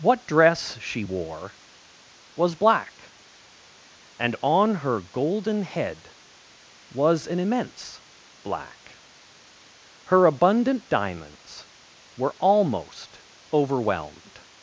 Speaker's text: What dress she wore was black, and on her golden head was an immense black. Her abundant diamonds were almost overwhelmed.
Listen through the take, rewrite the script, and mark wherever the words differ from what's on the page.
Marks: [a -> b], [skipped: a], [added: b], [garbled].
What dress she wore was black, and on her golden head was an immense black. Her abundant diamonds were almost overwhelmed.